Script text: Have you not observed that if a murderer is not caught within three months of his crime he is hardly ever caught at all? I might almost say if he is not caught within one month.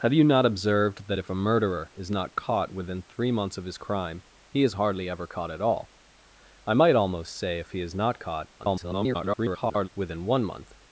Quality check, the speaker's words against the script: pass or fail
fail